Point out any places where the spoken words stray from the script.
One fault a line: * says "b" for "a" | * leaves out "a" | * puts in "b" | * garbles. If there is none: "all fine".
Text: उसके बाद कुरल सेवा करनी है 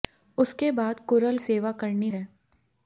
all fine